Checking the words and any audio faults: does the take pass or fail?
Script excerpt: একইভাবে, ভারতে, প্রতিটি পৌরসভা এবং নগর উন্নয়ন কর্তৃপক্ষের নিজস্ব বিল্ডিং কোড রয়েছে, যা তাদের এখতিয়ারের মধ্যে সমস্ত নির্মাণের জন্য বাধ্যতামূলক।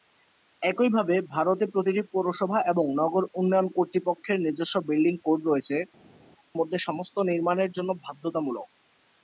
fail